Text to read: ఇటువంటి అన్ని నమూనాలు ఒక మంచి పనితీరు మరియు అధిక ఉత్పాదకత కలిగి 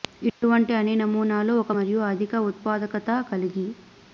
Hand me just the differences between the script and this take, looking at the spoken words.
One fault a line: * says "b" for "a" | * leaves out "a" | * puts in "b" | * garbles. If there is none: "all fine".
* leaves out "మంచి పనితీరు"